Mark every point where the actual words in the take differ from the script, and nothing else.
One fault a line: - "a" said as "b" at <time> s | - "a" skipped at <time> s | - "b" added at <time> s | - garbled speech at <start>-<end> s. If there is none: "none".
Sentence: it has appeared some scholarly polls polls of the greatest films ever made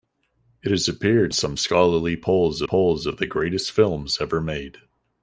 none